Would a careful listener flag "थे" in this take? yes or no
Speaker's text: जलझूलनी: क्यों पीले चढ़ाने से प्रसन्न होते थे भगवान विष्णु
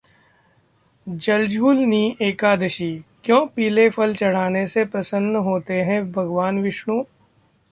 yes